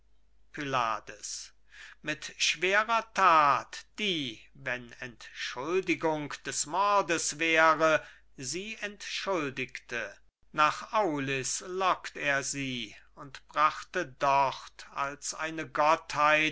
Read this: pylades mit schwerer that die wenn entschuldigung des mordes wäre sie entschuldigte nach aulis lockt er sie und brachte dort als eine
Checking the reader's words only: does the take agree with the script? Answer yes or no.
yes